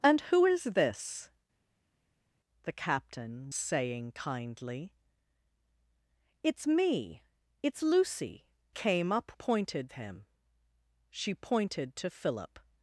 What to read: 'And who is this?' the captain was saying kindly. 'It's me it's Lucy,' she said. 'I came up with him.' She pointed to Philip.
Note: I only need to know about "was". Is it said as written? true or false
false